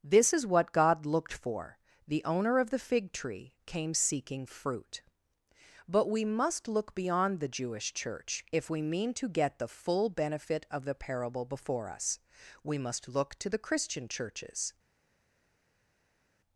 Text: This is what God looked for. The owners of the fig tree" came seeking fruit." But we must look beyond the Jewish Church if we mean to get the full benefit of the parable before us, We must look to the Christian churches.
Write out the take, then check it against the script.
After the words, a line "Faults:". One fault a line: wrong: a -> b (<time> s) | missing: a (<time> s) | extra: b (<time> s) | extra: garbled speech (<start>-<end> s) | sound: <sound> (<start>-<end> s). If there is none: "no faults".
This is what God looked for. The owner of the fig tree" came seeking fruit." But we must look beyond the Jewish Church if we mean to get the full benefit of the parable before us, We must look to the Christian churches.
Faults:
wrong: owners -> owner (2.2 s)